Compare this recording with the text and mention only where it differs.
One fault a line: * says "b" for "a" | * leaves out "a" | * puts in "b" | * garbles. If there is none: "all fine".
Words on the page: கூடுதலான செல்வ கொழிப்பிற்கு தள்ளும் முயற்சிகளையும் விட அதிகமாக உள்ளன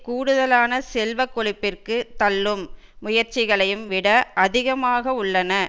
all fine